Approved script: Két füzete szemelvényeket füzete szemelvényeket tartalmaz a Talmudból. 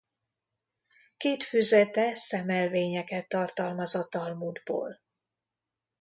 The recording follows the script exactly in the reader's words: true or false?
false